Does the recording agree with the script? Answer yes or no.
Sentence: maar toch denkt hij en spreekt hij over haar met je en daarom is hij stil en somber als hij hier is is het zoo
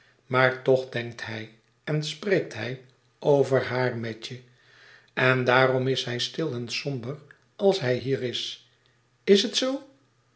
yes